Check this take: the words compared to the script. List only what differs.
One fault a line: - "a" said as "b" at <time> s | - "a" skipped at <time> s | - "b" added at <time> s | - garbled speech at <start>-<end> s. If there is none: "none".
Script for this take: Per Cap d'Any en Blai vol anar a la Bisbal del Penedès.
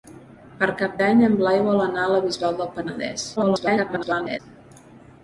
- garbled speech at 3.4-4.4 s